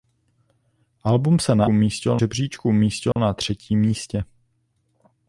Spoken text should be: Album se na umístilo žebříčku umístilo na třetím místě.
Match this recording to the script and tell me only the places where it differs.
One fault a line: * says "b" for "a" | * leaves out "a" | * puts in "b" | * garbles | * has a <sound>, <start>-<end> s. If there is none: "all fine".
* has a dropout, 3.1-3.2 s